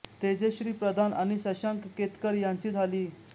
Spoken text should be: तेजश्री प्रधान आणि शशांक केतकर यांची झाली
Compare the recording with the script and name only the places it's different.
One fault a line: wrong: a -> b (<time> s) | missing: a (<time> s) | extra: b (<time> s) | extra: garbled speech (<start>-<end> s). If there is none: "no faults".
no faults